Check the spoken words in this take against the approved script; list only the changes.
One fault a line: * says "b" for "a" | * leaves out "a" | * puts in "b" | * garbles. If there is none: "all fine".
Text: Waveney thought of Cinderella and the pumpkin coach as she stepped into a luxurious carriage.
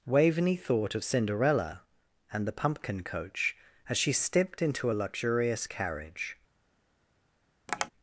all fine